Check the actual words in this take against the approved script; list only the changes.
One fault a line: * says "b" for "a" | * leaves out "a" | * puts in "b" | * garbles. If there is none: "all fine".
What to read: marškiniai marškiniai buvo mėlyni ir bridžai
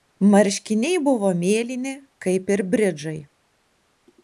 * leaves out "marškiniai"
* puts in "kaip"